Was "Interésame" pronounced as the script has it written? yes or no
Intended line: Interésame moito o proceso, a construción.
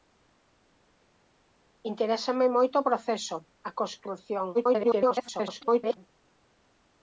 yes